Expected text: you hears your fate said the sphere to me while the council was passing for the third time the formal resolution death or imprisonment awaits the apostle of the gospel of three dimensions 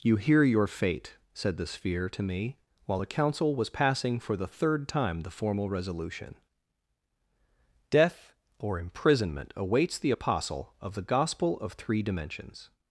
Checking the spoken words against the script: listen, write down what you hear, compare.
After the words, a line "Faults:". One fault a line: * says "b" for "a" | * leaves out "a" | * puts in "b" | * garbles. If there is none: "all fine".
you hear your fate said the sphere to me while the council was passing for the third time the formal resolution death or imprisonment awaits the apostle of the gospel of three dimensions
Faults:
* says "hear" for "hears"